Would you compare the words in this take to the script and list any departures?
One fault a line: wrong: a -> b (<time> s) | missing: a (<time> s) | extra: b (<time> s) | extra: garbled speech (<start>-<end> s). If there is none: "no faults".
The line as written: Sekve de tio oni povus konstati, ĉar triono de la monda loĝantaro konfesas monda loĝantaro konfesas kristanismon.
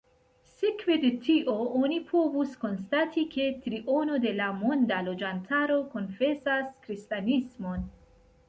wrong: ĉar -> ke (3.4 s)
missing: monda loĝantaro konfesas (6.7 s)